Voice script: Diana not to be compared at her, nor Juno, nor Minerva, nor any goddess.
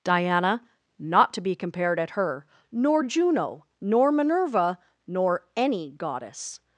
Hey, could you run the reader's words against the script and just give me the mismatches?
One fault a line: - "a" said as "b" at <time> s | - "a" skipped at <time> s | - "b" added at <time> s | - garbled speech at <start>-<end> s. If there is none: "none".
none